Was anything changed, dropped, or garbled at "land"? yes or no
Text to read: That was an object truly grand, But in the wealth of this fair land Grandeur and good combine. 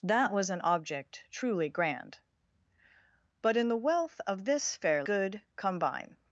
yes